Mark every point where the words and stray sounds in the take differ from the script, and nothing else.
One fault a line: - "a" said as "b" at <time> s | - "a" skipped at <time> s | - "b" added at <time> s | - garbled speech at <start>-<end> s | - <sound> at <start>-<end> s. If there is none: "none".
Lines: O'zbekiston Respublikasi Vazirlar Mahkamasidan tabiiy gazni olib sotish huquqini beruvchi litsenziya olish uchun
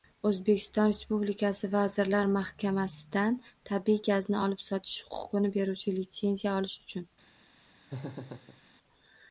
- laugh at 7.9-8.6 s